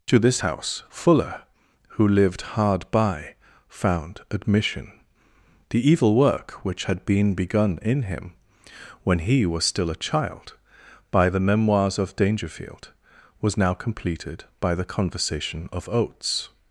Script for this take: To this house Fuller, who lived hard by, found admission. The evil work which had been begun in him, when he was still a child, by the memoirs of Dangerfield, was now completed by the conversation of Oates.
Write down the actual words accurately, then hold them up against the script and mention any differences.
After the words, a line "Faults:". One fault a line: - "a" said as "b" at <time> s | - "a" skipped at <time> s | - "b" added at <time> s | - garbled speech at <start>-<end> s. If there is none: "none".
To this house Fuller, who lived hard by, found admission. The evil work which had been begun in him, when he was still a child, by the memoirs of Dangerfield, was now completed by the conversation of Oates.
Faults:
none